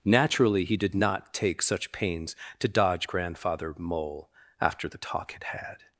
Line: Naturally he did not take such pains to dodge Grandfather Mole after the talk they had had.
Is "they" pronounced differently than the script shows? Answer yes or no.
yes